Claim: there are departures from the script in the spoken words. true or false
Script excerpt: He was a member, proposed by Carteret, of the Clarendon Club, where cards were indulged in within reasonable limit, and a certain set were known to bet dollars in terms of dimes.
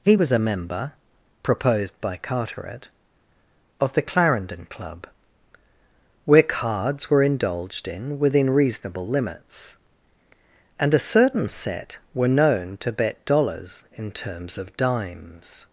true